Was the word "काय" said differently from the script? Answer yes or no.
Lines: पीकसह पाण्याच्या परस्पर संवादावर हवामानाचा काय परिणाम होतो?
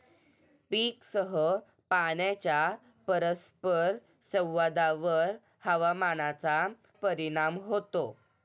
yes